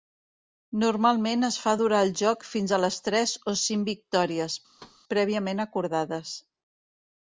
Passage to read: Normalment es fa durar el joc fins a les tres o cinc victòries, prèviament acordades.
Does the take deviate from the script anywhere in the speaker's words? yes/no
no